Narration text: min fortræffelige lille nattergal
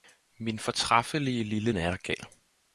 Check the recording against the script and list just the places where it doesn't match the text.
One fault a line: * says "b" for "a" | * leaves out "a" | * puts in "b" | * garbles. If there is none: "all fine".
all fine